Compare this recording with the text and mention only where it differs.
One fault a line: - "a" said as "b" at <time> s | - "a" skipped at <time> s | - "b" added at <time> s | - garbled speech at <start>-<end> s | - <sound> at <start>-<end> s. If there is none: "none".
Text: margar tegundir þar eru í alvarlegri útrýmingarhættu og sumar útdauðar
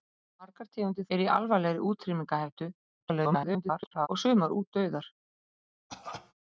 - "þar" skipped at 1.1 s
- garbled speech at 3.0-4.1 s
- cough at 5.9-6.3 s